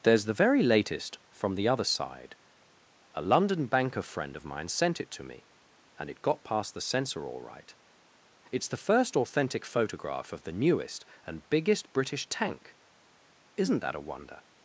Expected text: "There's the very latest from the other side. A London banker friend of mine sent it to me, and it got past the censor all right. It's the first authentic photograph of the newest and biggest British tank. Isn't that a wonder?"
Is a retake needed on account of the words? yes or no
no